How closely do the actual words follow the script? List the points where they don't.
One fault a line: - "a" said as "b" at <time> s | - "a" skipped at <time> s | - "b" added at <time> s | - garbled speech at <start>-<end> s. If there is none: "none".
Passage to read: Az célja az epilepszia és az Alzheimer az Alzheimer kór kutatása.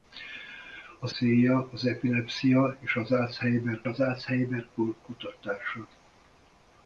none